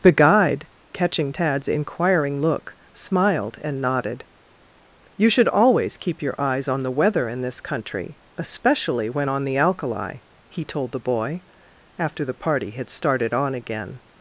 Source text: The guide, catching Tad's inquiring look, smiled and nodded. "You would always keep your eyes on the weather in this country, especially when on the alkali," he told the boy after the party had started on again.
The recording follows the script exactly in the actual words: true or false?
false